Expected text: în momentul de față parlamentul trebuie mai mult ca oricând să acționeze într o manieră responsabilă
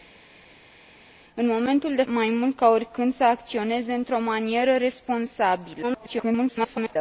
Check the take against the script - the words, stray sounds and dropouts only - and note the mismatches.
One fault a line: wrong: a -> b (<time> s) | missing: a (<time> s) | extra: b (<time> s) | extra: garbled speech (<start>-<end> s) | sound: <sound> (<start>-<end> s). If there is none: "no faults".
missing: față parlamentul trebuie (2.0 s)
extra: garbled speech (5.8-7.0 s)